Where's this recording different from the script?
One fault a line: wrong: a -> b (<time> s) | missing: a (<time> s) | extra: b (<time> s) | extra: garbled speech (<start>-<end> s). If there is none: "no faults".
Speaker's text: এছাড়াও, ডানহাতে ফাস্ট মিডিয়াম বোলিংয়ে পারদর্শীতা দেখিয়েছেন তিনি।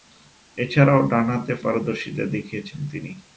missing: ফাস্ট মিডিয়াম বোলিংয়ে (1.5 s)